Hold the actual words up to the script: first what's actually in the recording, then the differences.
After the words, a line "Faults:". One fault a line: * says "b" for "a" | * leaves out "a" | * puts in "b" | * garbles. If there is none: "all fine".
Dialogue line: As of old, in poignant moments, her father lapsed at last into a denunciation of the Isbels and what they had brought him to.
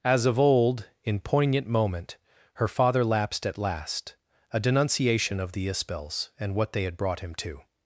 As of old, in poignant moment, her father lapsed at last a denunciation of the Isbels and what they had brought him to.
Faults:
* says "moment" for "moments"
* leaves out "into"